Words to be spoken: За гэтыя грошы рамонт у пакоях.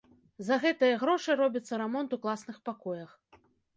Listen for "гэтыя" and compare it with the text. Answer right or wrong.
right